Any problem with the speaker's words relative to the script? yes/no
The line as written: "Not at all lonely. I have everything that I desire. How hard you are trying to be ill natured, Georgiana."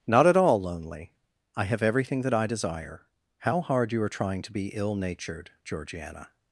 no